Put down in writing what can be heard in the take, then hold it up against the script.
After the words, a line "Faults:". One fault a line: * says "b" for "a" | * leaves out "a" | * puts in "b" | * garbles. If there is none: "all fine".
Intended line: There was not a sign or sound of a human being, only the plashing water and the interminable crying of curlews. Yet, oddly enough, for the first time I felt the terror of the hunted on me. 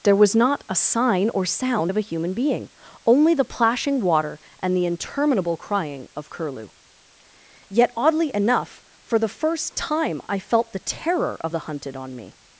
There was not a sign or sound of a human being, only the plashing water and the interminable crying of curlew. Yet, oddly enough, for the first time I felt the terror of the hunted on me.
Faults:
* says "curlew" for "curlews"